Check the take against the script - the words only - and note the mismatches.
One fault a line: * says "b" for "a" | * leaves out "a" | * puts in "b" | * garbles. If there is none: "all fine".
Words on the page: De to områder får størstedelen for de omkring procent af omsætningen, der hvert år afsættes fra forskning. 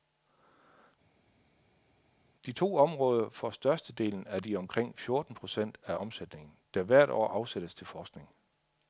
* says "af" for "for"
* puts in "fjorten"
* says "til" for "fra"